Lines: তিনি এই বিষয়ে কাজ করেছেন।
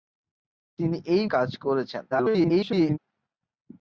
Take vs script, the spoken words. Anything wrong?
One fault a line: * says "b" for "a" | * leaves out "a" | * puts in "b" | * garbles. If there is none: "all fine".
* leaves out "বিষয়ে"
* garbles